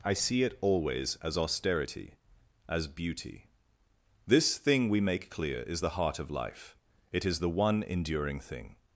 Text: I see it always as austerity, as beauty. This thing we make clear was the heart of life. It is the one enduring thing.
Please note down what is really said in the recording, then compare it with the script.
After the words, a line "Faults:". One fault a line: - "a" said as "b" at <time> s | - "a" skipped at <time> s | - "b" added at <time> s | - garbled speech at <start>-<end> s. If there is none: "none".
I see it always as austerity, as beauty. This thing we make clear is the heart of life. It is the one enduring thing.
Faults:
- "was" said as "is" at 5.6 s